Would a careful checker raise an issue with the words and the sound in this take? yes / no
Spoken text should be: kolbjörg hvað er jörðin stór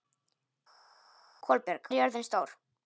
yes